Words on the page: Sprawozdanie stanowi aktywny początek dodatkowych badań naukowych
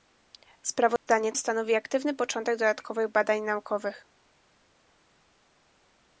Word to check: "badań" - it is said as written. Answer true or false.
true